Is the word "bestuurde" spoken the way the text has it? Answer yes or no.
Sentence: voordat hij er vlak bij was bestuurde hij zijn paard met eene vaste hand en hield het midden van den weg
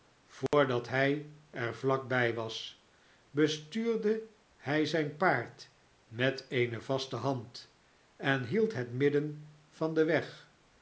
yes